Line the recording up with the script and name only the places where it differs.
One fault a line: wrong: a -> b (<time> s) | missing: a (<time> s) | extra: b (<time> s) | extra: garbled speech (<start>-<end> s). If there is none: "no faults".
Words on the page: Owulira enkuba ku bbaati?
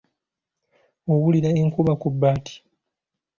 no faults